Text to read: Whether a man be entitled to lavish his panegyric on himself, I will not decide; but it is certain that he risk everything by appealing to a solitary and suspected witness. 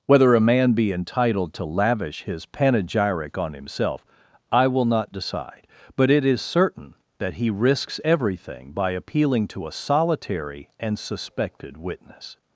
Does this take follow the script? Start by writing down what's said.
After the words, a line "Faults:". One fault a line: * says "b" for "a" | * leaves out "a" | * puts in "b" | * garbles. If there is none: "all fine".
Whether a man be entitled to lavish his panegyric on himself, I will not decide; but it is certain that he risks everything by appealing to a solitary and suspected witness.
Faults:
* says "risks" for "risk"